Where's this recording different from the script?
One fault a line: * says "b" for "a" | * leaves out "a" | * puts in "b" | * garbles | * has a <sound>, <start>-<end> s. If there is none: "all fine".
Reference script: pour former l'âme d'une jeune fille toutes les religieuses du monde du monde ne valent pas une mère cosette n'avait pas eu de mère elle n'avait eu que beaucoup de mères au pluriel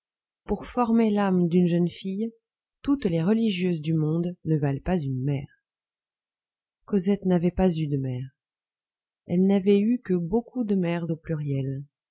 * leaves out "du monde"